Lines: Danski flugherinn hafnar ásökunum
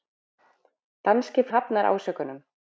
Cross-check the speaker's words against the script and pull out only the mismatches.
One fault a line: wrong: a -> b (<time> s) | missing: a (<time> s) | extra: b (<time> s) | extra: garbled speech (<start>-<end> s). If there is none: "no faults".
missing: flugherinn (1.4 s)